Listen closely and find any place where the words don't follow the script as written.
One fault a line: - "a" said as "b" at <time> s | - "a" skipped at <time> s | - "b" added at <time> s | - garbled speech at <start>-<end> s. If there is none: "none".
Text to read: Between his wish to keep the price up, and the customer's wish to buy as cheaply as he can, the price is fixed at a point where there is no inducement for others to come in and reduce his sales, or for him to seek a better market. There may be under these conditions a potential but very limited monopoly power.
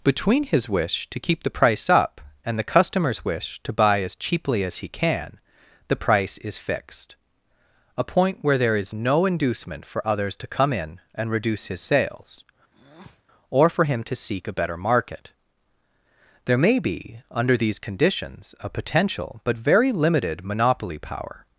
- "at" skipped at 7.2 s